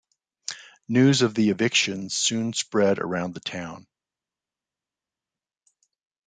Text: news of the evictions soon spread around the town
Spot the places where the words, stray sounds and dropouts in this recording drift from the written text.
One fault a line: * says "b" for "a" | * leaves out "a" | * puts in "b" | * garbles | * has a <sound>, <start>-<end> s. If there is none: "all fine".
all fine